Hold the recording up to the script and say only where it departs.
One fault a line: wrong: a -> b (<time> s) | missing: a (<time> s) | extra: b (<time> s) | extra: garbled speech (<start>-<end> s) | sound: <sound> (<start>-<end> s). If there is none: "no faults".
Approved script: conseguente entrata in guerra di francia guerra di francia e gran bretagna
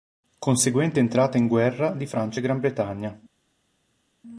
missing: guerra di francia (2.4 s)